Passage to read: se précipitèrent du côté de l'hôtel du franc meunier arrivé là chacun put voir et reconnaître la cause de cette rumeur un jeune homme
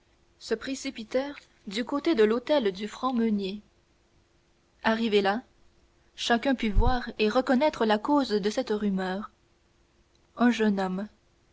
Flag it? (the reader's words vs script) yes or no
no